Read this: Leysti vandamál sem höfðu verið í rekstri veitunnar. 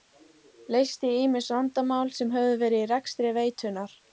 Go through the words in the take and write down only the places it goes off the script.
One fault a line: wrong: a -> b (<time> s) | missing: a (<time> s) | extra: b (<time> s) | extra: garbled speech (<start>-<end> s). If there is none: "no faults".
extra: ýmis (1.2 s)